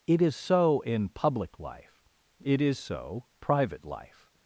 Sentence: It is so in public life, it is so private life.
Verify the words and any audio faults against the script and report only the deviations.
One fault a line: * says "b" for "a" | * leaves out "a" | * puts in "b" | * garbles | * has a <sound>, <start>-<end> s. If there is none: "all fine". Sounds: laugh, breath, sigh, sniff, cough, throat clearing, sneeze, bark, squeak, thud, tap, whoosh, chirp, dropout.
all fine